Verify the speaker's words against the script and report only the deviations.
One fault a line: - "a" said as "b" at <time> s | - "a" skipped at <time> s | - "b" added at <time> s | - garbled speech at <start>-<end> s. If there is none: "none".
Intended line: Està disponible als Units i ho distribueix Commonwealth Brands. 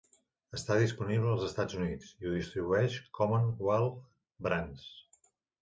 - "Estats" added at 1.5 s